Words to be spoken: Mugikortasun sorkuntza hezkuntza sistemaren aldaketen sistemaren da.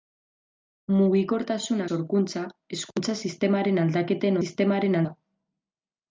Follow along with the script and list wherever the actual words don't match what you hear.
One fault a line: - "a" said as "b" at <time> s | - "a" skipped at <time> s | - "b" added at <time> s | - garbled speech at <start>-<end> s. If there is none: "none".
none